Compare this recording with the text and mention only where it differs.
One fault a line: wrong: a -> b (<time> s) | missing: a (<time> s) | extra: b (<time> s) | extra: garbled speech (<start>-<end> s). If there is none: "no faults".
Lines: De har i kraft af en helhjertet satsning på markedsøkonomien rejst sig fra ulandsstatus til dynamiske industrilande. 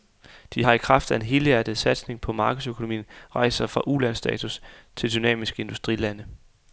no faults